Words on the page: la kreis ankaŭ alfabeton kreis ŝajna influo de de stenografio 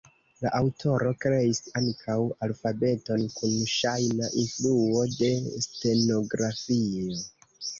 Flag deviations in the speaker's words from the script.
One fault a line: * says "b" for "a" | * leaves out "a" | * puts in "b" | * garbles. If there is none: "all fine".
* puts in "aŭtoro"
* says "kun" for "kreis"
* leaves out "de"